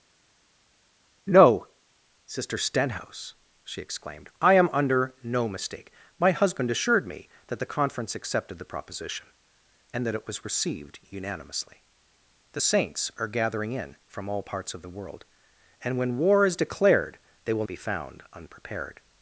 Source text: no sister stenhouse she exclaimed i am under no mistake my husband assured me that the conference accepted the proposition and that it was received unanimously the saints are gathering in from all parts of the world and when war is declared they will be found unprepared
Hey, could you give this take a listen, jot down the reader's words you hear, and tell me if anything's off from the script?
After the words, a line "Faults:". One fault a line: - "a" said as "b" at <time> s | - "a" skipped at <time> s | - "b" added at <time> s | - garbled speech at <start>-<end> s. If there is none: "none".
no sister stenhouse she exclaimed i am under no mistake my husband assured me that the conference accepted the proposition and that it was received unanimously the saints are gathering in from all parts of the world and when war is declared they will be found unprepared
Faults:
none